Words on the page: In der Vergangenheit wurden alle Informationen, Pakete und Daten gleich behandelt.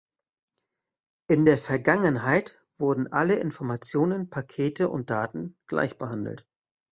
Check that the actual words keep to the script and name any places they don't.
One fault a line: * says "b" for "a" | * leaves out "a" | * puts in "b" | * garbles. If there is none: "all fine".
all fine